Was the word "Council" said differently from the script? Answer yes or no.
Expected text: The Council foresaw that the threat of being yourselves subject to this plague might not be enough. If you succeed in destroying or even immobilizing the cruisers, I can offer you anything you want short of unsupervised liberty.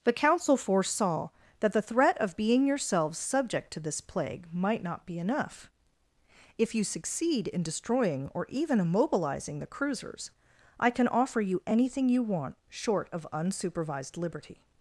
no